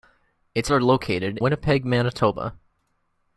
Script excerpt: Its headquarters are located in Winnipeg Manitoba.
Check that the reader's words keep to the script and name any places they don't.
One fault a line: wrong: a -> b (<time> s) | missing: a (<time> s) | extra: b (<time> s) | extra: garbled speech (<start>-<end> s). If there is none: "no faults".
missing: headquarters (0.7 s)
missing: in (1.4 s)